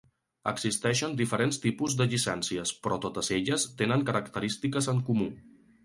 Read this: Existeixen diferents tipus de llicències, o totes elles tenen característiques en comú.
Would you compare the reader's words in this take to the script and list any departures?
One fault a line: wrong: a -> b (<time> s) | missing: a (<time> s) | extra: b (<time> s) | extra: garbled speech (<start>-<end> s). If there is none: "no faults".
wrong: o -> però (2.9 s)